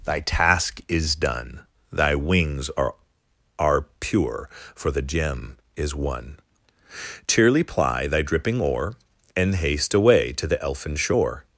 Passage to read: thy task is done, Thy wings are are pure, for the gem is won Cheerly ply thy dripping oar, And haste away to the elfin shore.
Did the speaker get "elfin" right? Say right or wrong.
right